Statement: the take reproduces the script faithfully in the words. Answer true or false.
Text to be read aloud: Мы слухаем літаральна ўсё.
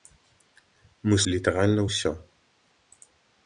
false